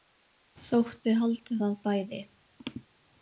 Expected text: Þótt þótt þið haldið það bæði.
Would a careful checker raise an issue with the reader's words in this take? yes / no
yes